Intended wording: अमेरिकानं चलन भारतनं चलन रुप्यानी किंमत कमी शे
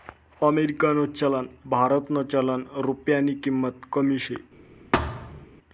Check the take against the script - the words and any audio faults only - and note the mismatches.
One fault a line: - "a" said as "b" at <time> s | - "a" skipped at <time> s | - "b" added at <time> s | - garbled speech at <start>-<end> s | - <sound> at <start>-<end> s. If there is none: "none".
- thud at 4.9-5.5 s